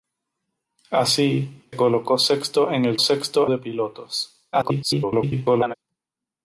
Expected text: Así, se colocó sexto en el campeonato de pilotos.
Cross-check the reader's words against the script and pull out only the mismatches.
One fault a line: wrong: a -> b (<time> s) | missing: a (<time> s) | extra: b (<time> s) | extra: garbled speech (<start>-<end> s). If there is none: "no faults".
missing: se (1.7 s)
wrong: campeonato -> sexto (3.0 s)
extra: garbled speech (4.5-5.7 s)